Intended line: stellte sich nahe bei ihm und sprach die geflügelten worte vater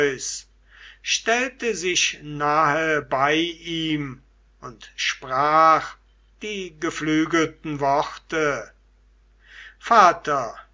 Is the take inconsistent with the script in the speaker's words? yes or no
no